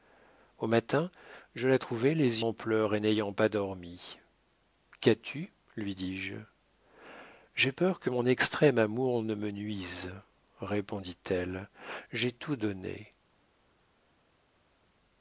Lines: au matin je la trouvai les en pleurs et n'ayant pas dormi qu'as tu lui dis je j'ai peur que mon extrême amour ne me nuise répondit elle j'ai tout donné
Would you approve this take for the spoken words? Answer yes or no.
yes